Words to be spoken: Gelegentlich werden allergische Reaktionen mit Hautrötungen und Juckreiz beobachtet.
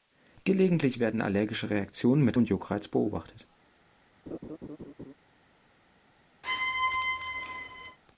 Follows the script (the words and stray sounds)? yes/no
no